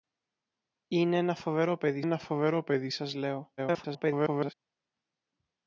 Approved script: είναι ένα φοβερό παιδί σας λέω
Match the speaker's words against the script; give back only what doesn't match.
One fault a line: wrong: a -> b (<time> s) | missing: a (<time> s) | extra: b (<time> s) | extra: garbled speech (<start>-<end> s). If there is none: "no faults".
extra: ένα φοβερό παιδί (2.0 s)
extra: garbled speech (3.6-4.5 s)